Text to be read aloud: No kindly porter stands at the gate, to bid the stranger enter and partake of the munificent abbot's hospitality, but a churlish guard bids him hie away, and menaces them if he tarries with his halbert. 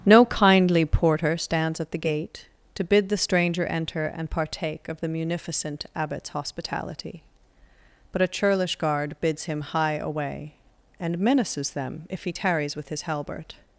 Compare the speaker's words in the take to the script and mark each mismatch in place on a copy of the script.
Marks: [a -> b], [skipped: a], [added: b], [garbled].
No kindly porter stands at the gate, to bid the stranger enter and partake of the munificent abbot's hospitality, but a churlish guard bids him hie away, and menaces them if he tarries with his halbert.